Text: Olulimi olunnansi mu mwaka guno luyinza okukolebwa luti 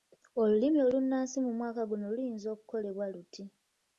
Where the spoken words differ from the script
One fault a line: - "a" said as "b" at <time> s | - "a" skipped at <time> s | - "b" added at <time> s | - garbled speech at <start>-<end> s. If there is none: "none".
none